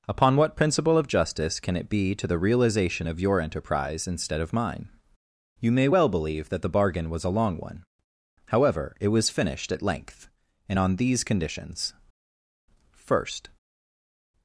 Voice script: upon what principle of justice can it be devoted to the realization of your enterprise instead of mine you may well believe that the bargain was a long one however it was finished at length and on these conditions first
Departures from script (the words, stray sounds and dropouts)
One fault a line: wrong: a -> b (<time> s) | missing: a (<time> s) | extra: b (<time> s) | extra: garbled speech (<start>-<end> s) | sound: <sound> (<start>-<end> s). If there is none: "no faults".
missing: devoted (2.1 s)